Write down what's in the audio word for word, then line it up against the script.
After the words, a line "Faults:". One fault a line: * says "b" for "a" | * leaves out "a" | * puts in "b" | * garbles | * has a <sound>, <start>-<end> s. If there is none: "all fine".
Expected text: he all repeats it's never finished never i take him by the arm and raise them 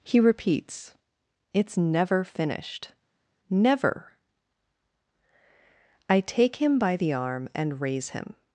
he repeats it's never finished never i take him by the arm and raise him
Faults:
* leaves out "all"
* says "him" for "them"